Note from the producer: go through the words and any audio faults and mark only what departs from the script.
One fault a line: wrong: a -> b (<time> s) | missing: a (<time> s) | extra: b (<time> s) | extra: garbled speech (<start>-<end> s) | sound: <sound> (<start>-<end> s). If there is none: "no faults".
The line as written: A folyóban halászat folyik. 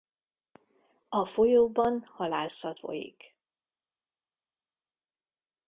no faults